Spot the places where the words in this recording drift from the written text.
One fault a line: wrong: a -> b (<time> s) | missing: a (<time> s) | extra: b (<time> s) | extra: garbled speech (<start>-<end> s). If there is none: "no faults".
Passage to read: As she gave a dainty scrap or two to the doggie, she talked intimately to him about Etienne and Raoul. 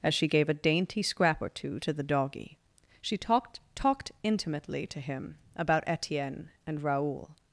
extra: talked (3.7 s)